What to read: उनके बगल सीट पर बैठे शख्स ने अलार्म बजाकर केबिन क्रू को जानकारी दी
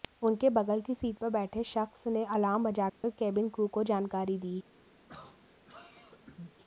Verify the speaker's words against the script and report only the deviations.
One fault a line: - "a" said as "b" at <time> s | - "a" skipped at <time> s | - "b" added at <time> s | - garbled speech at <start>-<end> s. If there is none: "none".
- "की" added at 0.8 s